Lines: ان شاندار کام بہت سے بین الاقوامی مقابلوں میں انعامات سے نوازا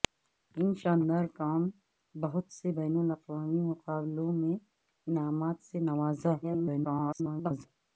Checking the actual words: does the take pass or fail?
fail